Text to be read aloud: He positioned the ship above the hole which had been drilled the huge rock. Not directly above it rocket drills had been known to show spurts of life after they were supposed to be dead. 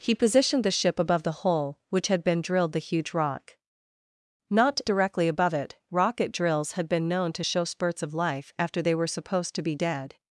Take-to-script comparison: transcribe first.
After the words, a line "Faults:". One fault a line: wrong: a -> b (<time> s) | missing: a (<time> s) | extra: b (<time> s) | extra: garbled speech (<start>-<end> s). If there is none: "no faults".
He positioned the ship above the hole which had been drilled the huge rock. Not directly above it rocket drills had been known to show spurts of life after they were supposed to be dead.
Faults:
no faults